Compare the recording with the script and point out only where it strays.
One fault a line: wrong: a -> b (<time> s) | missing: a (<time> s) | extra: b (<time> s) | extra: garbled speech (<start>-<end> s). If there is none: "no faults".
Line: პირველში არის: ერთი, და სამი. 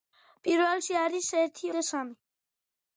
no faults